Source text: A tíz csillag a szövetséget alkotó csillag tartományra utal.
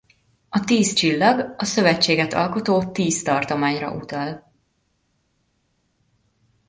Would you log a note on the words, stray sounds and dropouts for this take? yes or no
yes